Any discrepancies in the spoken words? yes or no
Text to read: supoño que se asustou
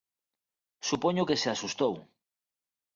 no